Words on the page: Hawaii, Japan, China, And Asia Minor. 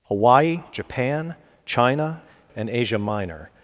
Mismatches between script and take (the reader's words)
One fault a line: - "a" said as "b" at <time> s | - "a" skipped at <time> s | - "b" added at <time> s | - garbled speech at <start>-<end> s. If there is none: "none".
none